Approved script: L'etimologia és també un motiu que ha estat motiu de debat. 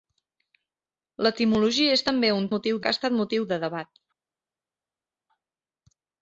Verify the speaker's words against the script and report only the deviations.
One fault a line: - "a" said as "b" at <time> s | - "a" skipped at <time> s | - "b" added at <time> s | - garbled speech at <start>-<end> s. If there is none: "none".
none